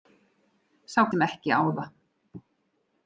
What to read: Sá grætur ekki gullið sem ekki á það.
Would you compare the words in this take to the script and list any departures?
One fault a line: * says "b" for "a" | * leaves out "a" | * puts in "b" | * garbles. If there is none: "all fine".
* leaves out "grætur ekki gullið"